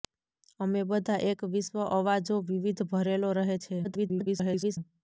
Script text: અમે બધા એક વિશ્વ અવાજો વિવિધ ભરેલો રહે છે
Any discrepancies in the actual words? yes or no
yes